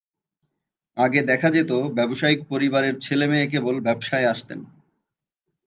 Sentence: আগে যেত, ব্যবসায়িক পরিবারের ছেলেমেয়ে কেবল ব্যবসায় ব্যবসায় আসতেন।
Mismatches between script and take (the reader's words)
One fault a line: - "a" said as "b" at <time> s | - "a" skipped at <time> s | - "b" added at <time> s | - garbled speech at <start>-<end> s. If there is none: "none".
- "দেখা" added at 1.2 s
- "ব্যবসায়" skipped at 4.3 s